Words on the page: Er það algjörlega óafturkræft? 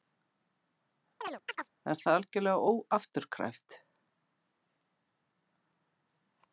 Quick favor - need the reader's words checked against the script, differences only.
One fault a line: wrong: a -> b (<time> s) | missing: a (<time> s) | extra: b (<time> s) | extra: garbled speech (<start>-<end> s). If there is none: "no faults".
no faults